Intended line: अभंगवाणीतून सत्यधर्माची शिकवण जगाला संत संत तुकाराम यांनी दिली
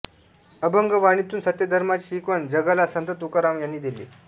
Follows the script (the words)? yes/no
no